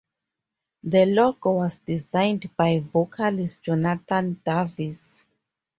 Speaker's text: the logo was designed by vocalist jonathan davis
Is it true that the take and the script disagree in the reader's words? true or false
false